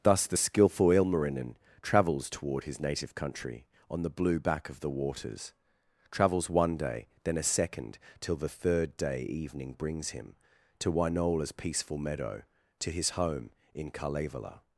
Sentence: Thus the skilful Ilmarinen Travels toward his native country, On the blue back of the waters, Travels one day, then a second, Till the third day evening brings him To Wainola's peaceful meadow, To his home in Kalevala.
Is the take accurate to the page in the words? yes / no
yes